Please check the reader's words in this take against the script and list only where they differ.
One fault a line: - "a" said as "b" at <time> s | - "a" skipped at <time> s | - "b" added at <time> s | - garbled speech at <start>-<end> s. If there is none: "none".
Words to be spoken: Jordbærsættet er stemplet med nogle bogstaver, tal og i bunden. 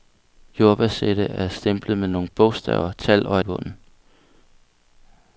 none